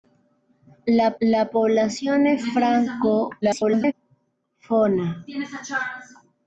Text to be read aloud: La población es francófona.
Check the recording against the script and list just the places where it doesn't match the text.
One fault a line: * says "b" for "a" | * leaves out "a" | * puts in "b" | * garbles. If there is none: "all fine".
* puts in "la"
* garbles